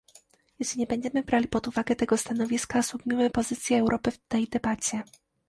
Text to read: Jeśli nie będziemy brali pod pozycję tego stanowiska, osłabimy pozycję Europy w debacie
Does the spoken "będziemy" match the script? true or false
true